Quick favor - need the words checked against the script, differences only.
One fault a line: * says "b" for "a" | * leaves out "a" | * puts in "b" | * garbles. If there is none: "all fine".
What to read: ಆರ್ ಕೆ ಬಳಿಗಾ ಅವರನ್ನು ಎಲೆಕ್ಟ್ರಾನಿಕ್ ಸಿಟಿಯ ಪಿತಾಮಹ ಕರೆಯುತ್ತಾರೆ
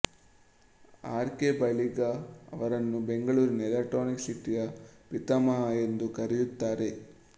* puts in "ಬೆಂಗಳೂರಿನ"
* puts in "ಎಂದು"